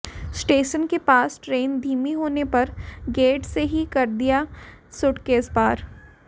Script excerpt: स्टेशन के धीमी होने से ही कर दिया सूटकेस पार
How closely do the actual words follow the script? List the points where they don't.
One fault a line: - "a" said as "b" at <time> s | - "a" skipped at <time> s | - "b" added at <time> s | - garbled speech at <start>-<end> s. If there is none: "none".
- "पास ट्रेन" added at 1.0 s
- "पर गेट" added at 2.5 s